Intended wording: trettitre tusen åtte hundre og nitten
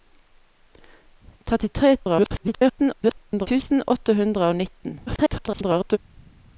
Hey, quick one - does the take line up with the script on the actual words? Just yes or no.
no